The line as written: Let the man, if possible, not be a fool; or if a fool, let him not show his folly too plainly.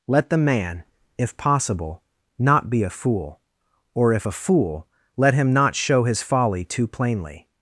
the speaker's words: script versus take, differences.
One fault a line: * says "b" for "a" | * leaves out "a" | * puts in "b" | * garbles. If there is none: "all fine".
all fine